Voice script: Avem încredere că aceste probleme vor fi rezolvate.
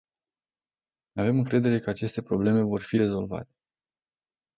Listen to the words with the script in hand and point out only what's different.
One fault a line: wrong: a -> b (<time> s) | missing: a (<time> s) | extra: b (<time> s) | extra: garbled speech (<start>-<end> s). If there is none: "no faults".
no faults